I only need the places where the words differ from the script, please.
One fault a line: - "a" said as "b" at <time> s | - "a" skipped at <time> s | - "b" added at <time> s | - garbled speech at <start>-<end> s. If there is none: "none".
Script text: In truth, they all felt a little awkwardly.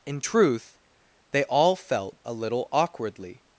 none